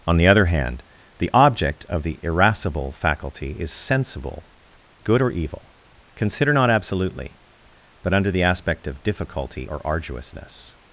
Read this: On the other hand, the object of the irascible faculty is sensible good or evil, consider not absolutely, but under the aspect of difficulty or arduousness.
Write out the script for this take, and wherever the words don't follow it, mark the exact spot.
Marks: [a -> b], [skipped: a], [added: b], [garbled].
On the other hand, the object of the irascible faculty is sensible good or evil, consider not absolutely, but under the aspect of difficulty or arduousness.